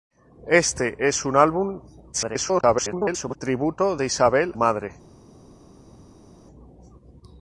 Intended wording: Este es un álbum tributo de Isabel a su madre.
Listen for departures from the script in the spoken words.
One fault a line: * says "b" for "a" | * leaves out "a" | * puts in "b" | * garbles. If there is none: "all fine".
* garbles
* leaves out "a su"